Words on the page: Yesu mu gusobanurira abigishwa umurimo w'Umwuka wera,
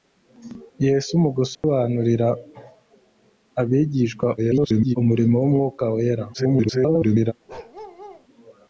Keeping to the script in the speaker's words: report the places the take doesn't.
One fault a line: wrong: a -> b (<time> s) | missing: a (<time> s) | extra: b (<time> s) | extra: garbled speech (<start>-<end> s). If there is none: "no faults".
extra: garbled speech (4.4-5.0 s)
extra: garbled speech (6.3-7.3 s)